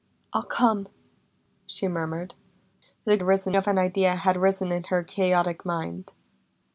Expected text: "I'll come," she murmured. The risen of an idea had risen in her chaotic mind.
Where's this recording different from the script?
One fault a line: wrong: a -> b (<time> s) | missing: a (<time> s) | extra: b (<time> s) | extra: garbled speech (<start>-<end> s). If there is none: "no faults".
no faults